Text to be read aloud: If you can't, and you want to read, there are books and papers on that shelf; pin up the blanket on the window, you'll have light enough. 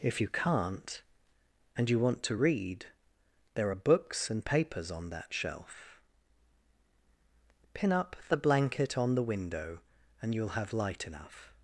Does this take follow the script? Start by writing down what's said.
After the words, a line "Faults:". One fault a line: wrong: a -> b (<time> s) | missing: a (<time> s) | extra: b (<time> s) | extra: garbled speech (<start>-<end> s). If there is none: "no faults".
If you can't, and you want to read, there are books and papers on that shelf; pin up the blanket on the window, and you'll have light enough.
Faults:
extra: and (10.2 s)